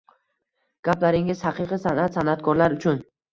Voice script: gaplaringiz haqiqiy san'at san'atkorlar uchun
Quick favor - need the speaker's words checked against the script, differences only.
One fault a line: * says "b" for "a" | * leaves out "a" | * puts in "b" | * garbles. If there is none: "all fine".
all fine